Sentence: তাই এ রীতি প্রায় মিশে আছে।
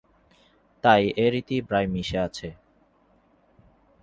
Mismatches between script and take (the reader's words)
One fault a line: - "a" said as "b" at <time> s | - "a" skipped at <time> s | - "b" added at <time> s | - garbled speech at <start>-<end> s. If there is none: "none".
none